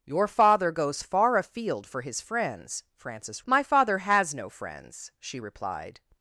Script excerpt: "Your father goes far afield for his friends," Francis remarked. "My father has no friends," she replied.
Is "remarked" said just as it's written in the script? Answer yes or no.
no